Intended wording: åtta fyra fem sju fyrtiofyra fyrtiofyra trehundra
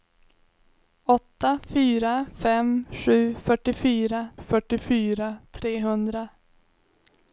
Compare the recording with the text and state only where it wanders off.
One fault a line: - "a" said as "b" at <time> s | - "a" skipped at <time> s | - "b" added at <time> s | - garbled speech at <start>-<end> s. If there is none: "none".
none